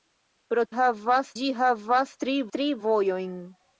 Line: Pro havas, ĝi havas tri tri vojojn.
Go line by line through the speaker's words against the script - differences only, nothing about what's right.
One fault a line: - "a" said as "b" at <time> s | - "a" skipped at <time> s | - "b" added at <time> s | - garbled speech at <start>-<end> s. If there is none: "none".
none